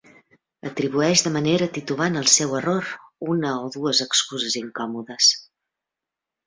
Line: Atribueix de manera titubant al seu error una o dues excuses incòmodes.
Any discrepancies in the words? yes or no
no